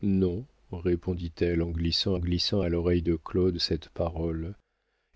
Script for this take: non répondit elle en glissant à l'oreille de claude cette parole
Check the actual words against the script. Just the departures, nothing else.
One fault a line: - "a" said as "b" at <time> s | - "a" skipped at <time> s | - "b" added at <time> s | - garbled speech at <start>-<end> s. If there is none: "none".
- "glissant" added at 2.2 s